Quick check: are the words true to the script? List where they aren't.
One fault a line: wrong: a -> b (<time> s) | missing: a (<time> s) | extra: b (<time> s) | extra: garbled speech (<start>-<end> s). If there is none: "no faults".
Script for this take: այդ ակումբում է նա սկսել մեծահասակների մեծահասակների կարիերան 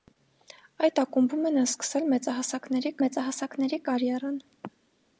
no faults